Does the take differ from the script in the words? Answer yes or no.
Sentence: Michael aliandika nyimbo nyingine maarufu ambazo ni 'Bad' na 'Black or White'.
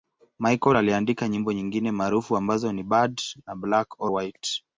no